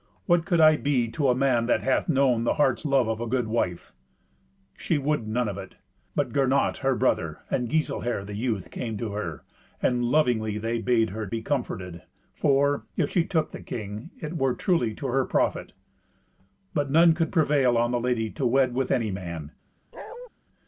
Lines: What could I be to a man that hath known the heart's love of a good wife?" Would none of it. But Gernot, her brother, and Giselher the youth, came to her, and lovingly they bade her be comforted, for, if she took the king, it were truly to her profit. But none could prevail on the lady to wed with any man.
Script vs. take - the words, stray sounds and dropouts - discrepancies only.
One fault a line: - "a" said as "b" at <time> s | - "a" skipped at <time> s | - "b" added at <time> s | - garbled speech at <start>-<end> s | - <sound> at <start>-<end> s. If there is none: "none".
- "She" added at 4.8 s
- bark at 19.9-20.3 s